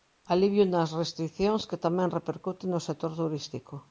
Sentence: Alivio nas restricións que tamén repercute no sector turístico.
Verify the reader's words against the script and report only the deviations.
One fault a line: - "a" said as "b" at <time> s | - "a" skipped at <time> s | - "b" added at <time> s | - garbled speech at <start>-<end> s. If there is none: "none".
none